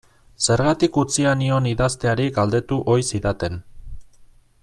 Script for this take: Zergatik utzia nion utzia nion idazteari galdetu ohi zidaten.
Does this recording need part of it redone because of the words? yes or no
yes